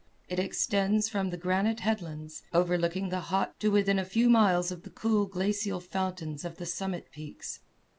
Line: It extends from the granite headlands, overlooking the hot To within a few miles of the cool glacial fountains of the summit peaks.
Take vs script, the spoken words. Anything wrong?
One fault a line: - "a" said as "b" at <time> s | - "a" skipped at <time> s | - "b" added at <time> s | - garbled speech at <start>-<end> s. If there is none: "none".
none